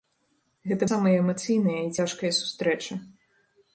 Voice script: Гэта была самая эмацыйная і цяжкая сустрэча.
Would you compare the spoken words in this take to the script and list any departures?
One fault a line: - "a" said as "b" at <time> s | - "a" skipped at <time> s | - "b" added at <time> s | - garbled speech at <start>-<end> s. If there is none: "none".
- "была" skipped at 0.9 s